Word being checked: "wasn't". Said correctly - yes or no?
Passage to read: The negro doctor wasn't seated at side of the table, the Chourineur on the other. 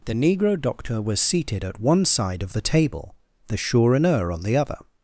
no